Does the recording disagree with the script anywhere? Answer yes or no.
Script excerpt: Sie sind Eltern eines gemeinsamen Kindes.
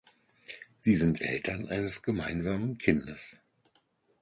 no